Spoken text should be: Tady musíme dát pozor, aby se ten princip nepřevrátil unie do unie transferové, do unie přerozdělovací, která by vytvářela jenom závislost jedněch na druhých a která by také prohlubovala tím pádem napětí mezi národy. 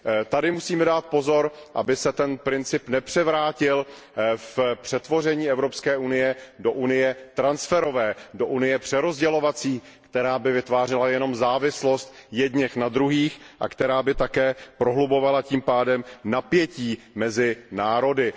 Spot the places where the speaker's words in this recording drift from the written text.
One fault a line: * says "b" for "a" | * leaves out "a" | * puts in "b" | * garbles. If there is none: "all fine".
* puts in "v přetvoření Evropské"